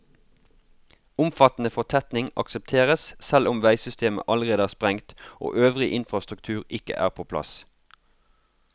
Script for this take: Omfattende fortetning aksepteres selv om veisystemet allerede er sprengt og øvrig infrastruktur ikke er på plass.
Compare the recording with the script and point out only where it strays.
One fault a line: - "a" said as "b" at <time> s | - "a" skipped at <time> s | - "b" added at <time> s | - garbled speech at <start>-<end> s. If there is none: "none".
none